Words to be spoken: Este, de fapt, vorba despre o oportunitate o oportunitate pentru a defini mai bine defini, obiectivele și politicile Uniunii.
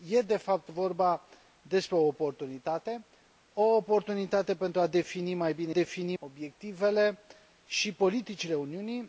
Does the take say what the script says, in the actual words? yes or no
yes